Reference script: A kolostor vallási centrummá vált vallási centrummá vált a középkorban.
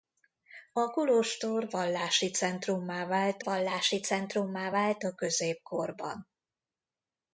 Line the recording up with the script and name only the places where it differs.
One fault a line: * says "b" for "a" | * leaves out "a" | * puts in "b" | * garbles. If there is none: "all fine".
all fine